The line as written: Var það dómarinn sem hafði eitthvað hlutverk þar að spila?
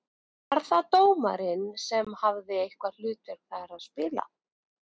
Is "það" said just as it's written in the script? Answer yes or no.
yes